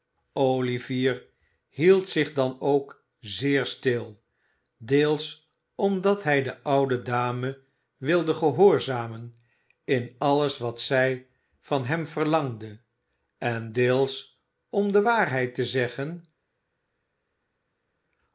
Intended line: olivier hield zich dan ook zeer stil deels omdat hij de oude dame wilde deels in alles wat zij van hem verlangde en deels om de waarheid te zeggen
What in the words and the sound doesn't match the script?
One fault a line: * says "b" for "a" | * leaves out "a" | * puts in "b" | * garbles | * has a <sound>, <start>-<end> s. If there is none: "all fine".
* says "gehoorzamen" for "deels"